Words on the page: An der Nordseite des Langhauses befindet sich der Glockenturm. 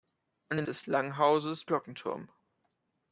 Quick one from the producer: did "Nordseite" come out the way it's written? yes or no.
no